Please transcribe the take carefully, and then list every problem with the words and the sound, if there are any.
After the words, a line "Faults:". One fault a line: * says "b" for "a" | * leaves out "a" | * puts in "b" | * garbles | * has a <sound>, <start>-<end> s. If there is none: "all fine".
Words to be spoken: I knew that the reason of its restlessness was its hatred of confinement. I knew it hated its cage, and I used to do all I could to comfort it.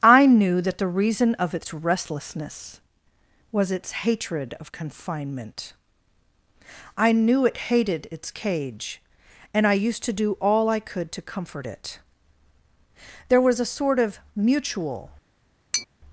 I knew that the reason of its restlessness was its hatred of confinement. I knew it hated its cage, and I used to do all I could to comfort it. There was a sort of mutual
Faults:
* puts in "There was a sort of mutual"
* has a tap, 15.7-15.9 s